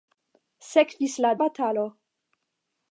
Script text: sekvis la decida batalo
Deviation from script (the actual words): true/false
true